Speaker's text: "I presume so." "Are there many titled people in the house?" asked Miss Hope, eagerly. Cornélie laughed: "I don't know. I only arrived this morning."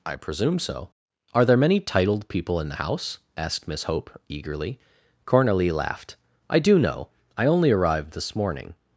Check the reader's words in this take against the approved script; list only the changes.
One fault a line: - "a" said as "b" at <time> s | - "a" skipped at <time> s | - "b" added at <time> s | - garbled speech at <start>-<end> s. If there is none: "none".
- "don't" said as "do" at 6.6 s